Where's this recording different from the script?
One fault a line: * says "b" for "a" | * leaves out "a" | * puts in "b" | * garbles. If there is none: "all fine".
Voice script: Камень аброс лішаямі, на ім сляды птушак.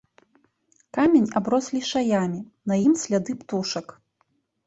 all fine